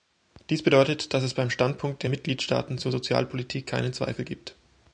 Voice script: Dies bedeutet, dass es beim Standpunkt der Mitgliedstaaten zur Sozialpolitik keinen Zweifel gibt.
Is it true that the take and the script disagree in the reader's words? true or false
false